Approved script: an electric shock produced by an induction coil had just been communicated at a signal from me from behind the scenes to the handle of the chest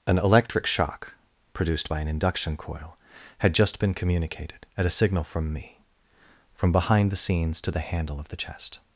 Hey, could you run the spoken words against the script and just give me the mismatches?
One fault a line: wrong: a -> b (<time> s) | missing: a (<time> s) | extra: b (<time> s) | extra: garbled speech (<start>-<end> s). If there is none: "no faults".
no faults